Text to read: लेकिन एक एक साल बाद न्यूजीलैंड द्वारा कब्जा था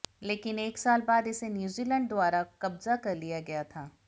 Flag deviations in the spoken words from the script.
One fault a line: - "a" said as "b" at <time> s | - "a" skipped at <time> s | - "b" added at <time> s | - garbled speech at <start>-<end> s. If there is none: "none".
- "एक" skipped at 0.8 s
- "इसे" added at 1.3 s
- "कर लिया गया" added at 3.0 s